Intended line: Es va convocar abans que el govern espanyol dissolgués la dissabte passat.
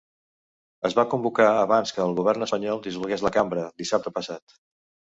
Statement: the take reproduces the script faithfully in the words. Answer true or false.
false